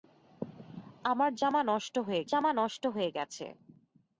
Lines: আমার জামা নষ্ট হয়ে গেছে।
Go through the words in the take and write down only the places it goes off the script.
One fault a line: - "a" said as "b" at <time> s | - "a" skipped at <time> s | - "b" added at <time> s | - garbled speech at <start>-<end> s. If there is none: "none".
- "জামা নষ্ট হয়ে" added at 2.2 s